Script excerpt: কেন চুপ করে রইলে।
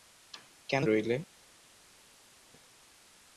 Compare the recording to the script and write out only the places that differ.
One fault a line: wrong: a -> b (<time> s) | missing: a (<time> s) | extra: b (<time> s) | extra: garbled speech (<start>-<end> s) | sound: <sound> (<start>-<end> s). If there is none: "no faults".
missing: চুপ করে (0.8 s)